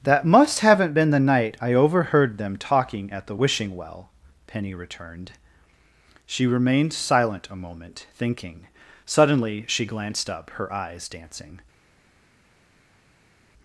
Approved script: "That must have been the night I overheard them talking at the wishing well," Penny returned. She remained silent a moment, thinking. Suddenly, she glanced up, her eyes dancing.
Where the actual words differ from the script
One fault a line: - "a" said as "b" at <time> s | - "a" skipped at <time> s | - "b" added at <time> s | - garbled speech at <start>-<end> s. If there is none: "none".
- "have" said as "haven't" at 0.6 s